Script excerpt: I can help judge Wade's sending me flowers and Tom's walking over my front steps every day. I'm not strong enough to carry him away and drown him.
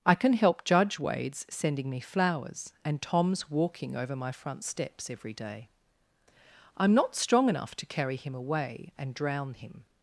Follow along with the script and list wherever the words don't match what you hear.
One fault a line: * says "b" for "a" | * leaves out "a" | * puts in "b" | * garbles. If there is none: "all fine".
all fine